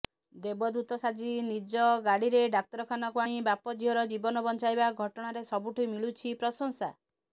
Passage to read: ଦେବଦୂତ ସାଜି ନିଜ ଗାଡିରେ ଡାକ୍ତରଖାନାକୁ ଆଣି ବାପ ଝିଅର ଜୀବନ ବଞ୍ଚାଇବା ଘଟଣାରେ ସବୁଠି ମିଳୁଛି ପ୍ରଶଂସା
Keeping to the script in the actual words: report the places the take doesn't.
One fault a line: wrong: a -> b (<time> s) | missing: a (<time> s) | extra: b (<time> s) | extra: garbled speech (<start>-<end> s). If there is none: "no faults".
no faults